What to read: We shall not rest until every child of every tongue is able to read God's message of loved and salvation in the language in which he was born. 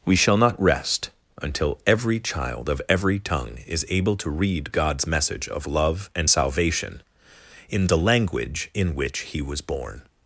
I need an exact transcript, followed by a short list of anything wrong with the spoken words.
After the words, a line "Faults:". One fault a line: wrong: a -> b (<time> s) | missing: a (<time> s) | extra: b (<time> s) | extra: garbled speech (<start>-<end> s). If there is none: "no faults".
We shall not rest until every child of every tongue is able to read God's message of love and salvation in the language in which he was born.
Faults:
wrong: loved -> love (5.7 s)